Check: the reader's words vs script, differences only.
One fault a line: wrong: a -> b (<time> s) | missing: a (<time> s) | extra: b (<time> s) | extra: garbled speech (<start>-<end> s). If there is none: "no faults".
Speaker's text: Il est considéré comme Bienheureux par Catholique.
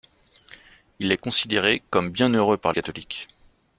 no faults